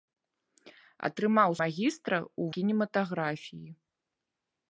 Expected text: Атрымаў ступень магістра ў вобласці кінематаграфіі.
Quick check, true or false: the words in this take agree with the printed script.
false